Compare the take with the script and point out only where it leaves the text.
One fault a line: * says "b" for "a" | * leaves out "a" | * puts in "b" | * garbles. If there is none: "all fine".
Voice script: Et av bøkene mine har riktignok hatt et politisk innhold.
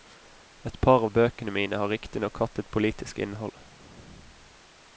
* puts in "par"